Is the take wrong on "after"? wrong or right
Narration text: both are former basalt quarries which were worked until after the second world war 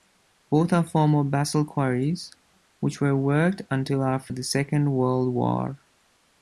right